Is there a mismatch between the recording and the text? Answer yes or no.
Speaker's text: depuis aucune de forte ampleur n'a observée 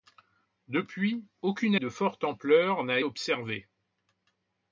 no